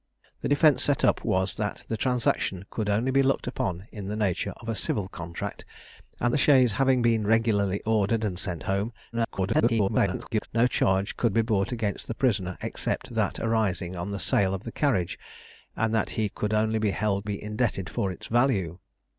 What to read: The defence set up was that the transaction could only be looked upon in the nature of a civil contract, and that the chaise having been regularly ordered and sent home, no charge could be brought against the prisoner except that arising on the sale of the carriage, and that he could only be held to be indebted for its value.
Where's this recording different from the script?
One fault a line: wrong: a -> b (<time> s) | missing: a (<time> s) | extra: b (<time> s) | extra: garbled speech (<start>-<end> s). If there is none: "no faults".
missing: that (6.3 s)
extra: garbled speech (9.1-10.5 s)
missing: to (17.3 s)